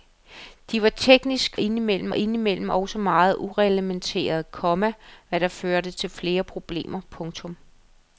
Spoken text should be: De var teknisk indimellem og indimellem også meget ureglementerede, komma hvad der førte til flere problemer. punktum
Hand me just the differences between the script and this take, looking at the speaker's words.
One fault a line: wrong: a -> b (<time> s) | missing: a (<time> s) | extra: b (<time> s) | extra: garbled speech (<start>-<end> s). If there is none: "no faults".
no faults